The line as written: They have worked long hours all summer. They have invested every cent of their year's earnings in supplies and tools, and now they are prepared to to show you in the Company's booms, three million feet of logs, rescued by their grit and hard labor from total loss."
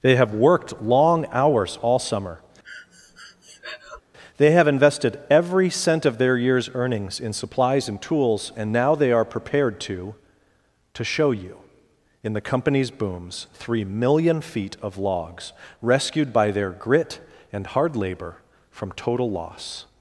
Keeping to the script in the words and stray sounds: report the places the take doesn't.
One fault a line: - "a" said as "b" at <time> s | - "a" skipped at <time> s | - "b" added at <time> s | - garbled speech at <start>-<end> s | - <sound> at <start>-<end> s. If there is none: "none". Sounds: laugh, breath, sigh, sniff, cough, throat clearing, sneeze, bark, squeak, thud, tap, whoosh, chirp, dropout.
- breath at 2.6-4.0 s